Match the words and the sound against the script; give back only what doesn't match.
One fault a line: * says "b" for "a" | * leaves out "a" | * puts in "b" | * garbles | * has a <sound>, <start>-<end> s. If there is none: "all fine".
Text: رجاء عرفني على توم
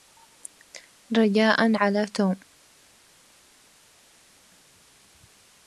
* leaves out "عرفني"